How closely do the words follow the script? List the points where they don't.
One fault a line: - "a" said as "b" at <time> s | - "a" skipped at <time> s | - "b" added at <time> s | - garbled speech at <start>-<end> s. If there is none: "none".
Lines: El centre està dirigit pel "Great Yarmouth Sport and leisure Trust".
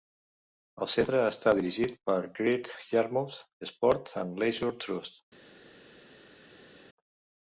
none